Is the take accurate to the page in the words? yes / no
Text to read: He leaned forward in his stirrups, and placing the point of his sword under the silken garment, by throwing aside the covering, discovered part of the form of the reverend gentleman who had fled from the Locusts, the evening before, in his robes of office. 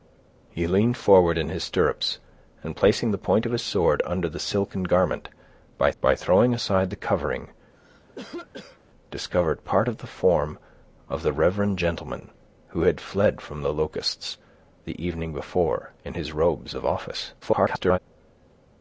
no